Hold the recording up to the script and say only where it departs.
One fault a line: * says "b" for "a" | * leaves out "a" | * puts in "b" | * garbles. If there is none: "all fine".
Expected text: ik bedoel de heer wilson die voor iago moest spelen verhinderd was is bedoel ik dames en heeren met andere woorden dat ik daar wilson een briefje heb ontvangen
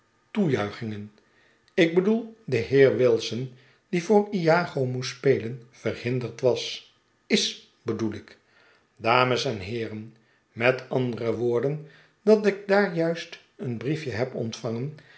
* says "juist" for "wilson"